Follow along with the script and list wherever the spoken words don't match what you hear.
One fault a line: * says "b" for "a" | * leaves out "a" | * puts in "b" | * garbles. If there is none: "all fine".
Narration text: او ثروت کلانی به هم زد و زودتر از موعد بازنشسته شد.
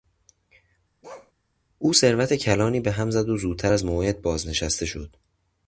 all fine